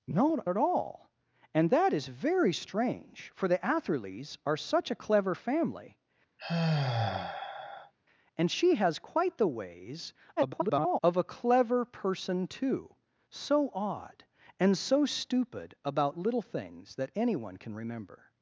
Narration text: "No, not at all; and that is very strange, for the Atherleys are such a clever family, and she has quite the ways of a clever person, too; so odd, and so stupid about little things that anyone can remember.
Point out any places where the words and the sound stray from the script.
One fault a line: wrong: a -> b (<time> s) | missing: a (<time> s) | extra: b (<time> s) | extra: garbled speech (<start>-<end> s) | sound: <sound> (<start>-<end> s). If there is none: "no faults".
missing: not (0.4 s)
sound: sigh (6.4-7.9 s)
extra: garbled speech (10.4-11.0 s)